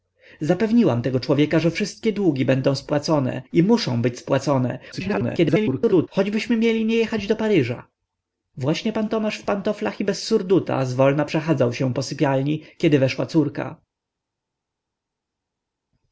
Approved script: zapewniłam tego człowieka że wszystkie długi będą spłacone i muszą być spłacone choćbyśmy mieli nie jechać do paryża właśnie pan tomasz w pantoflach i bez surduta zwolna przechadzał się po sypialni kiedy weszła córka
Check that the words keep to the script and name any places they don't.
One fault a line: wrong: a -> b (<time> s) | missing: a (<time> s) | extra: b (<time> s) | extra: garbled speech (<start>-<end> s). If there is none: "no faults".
extra: garbled speech (4.9-6.1 s)